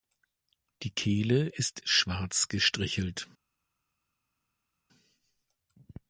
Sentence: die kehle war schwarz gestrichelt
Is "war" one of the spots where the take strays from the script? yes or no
yes